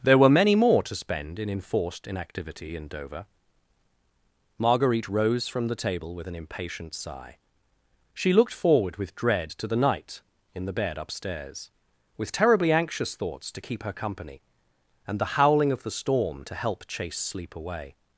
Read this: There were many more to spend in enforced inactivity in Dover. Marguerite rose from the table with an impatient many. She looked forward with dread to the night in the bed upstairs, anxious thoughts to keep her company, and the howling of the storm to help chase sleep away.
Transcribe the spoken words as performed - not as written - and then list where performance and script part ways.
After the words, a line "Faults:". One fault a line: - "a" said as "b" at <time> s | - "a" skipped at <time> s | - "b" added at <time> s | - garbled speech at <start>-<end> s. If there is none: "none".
There were many more to spend in enforced inactivity in Dover. Marguerite rose from the table with an impatient sigh. She looked forward with dread to the night in the bed upstairs, with terribly anxious thoughts to keep her company, and the howling of the storm to help chase sleep away.
Faults:
- "many" said as "sigh" at 7.0 s
- "with terribly" added at 12.2 s